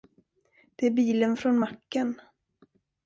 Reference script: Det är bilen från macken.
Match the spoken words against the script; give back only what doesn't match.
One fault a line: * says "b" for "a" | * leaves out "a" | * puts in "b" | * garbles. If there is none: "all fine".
all fine